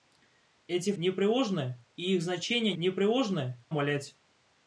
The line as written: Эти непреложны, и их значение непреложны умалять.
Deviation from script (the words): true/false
false